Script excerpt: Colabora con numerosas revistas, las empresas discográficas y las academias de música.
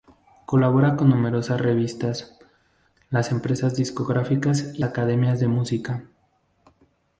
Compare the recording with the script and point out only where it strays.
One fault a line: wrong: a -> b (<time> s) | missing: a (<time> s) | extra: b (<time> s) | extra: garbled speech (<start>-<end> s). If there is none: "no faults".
missing: las (4.8 s)